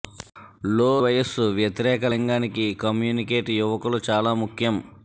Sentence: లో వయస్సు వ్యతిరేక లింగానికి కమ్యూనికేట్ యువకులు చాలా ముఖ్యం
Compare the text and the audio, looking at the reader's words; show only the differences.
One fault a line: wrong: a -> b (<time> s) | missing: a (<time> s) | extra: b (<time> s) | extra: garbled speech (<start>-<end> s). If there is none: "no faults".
no faults